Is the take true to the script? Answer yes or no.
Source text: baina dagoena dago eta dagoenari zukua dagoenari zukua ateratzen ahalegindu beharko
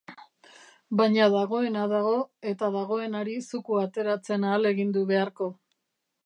no